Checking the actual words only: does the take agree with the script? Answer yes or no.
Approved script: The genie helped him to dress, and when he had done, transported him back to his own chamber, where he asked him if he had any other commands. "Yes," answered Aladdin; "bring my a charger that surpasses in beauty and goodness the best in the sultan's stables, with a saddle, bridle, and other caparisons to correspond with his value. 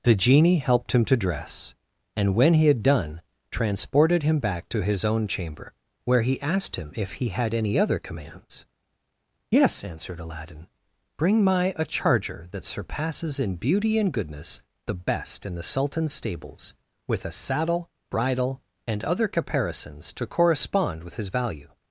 yes